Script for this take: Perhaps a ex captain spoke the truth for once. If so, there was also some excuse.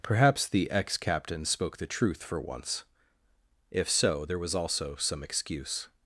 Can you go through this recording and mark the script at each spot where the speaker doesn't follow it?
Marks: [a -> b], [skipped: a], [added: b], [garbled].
Perhaps [a -> the] ex captain spoke the truth for once. If so, there was also some excuse.